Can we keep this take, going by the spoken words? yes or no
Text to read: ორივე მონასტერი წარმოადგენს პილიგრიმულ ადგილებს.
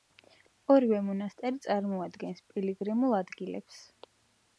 yes